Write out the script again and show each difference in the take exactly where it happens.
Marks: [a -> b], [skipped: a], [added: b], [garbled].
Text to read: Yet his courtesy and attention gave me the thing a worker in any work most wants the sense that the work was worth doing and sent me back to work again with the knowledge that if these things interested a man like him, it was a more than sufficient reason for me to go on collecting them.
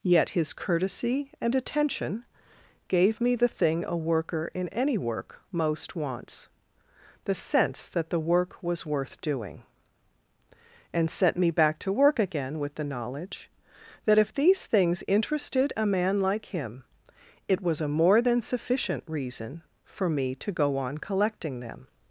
Yet his courtesy and attention gave me the thing a worker in any work most wants the sense that the work was worth doing and sent me back to work again with the knowledge that if these things interested a man like him, it was a more than sufficient reason for me to go on collecting them.